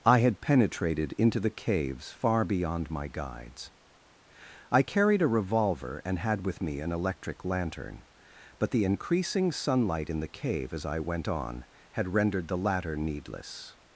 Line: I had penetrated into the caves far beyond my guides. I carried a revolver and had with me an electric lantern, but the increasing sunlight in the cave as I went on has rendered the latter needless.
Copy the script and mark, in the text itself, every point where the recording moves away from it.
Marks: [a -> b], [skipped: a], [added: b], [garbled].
I had penetrated into the caves far beyond my guides. I carried a revolver and had with me an electric lantern, but the increasing sunlight in the cave as I went on [has -> had] rendered the latter needless.